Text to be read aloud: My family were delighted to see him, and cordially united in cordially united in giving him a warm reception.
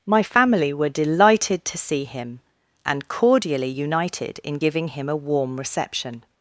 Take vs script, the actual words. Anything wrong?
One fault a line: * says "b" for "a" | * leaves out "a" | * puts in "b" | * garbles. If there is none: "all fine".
* leaves out "cordially united in"